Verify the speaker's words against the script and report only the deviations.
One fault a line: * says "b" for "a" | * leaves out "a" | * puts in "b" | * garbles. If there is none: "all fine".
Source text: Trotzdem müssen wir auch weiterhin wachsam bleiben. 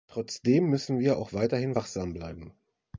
all fine